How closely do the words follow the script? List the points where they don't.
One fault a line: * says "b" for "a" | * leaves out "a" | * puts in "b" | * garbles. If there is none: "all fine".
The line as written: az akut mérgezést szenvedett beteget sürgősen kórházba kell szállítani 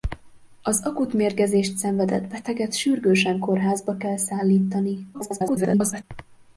* garbles